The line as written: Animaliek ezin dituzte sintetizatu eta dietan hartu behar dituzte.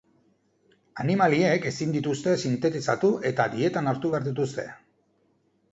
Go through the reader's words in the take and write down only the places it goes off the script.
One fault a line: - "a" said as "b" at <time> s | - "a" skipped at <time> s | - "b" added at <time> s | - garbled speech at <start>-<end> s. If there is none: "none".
none